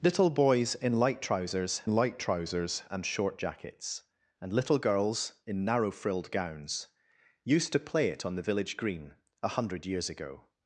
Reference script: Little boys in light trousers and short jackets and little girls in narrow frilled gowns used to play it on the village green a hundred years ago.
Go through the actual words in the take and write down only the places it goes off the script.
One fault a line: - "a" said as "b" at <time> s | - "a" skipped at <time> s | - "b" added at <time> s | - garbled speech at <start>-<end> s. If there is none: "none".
- "light trousers" added at 1.9 s